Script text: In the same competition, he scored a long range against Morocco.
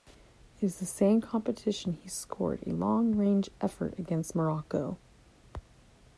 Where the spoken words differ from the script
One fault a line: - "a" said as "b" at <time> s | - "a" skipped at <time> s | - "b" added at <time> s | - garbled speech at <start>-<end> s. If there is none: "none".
- "effort" added at 3.6 s